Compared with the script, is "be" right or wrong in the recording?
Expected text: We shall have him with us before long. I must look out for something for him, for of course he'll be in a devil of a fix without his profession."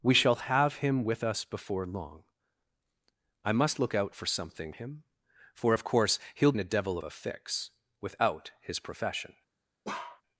wrong